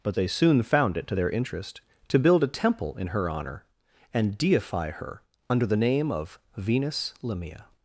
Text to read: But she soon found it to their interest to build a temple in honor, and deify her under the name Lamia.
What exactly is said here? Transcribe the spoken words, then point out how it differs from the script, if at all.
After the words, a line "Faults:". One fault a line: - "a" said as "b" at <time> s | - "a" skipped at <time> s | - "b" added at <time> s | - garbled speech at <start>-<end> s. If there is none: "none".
But they soon found it to their interest to build a temple in her honor, and deify her under the name of Venus Lamia.
Faults:
- "she" said as "they" at 0.1 s
- "her" added at 3.1 s
- "of Venus" added at 6.1 s